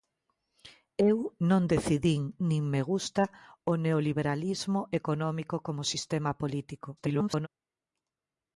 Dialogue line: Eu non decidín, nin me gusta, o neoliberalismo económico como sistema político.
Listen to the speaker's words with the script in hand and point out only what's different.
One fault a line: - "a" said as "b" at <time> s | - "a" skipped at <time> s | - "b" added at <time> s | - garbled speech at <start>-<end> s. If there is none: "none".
- garbled speech at 7.0-7.5 s